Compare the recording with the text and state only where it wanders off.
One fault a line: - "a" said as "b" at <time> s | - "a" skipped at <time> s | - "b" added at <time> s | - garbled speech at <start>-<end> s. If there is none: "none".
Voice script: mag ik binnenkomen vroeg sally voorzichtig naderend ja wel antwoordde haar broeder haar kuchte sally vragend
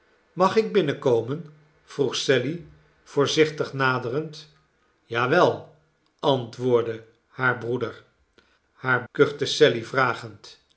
none